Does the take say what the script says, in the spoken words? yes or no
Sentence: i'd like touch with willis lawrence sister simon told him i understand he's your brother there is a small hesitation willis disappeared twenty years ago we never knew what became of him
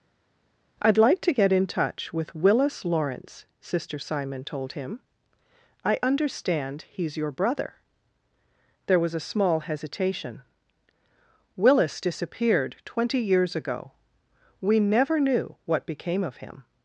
no